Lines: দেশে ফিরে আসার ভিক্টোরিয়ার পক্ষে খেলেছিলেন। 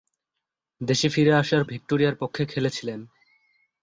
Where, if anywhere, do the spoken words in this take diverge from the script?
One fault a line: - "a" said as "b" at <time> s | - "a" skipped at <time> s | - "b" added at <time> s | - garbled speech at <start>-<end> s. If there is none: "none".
none